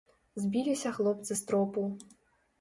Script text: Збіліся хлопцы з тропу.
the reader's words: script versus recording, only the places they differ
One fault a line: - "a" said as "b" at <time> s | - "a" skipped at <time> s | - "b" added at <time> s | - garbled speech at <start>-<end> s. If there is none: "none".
none